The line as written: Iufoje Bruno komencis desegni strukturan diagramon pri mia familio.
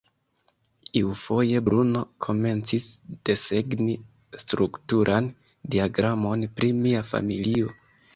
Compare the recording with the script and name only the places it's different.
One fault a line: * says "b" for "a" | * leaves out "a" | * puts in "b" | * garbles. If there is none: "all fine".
all fine